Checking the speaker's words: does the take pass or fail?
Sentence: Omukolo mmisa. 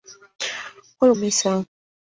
pass